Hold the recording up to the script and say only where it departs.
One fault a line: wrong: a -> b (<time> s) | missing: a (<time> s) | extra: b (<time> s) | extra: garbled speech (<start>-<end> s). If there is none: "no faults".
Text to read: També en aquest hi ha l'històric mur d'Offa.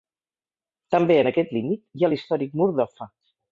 extra: límit (1.6 s)